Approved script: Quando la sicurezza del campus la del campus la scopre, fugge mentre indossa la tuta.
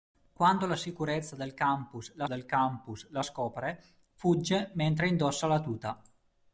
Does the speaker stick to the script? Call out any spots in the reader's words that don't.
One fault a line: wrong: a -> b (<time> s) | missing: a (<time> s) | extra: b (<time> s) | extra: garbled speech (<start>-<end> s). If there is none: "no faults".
no faults